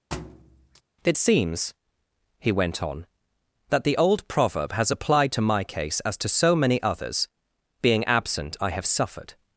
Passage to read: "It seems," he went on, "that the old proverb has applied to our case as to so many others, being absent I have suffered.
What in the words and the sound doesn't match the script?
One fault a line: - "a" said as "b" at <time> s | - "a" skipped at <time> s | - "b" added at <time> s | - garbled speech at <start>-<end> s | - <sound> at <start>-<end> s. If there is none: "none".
- thud at 0.1-0.8 s
- "our" said as "my" at 5.4 s